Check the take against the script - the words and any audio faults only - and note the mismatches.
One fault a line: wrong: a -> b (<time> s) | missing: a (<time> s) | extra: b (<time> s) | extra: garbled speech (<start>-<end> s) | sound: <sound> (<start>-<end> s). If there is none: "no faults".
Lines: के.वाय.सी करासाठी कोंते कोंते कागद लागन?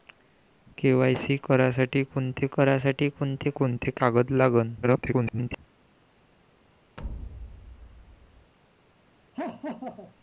extra: करासाठी कोंते (2.5 s)
extra: garbled speech (4.8-5.6 s)
sound: thud (7.0-8.5 s)
sound: laugh (9.3-10.1 s)